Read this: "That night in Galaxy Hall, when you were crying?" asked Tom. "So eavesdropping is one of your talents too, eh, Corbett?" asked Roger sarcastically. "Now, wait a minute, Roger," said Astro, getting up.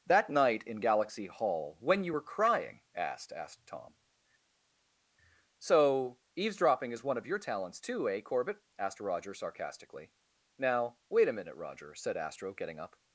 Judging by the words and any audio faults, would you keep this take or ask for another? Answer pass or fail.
fail